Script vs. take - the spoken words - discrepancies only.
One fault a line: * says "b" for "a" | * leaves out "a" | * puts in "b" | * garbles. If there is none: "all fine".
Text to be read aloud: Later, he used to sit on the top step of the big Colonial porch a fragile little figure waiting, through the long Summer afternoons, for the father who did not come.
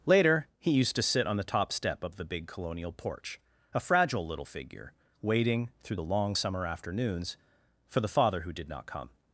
all fine